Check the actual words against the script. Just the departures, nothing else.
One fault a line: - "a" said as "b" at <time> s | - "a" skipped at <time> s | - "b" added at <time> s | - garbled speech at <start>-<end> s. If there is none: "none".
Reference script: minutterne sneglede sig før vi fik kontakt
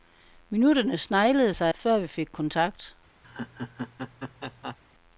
none